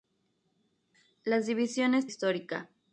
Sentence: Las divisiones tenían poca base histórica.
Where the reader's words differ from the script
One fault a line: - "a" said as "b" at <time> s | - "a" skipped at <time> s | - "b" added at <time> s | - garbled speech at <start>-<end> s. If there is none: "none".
- "tenían poca base" skipped at 2.1 s